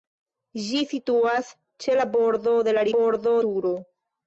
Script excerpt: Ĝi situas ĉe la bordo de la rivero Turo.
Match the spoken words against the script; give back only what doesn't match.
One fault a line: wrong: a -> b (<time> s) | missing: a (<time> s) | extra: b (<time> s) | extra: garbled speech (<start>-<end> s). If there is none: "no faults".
wrong: rivero -> bordo (3.0 s)